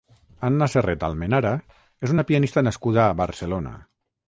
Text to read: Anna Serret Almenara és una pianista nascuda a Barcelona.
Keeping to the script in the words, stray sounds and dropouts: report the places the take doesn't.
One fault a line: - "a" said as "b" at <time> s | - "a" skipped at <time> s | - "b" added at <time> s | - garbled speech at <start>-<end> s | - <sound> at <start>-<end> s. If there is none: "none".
none